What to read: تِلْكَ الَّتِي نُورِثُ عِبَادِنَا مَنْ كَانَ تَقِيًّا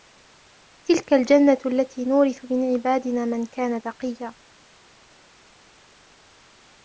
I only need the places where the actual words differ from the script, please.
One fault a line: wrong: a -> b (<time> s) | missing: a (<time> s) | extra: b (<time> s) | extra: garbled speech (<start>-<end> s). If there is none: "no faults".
extra: الْجَنَّةُ (1.1 s)
extra: مِنْ (2.5 s)